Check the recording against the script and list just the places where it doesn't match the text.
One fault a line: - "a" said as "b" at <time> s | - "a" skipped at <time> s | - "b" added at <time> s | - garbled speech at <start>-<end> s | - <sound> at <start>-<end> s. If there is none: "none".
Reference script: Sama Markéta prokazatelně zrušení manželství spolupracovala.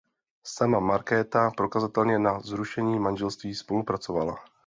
- "na" added at 2.2 s